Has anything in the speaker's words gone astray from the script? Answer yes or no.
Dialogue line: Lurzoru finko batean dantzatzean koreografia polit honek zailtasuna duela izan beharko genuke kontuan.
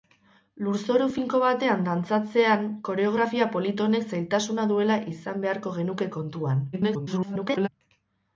yes